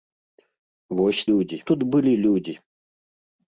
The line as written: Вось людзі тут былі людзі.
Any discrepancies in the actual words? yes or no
no